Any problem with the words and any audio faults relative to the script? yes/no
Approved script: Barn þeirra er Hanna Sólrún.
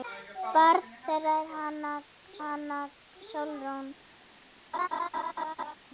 yes